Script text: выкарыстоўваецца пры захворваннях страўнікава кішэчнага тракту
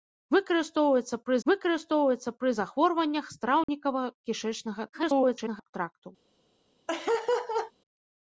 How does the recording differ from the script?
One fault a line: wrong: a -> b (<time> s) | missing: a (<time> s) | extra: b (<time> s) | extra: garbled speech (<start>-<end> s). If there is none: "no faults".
extra: выкарыстоўваецца пры (1.5 s)
extra: garbled speech (4.9-5.7 s)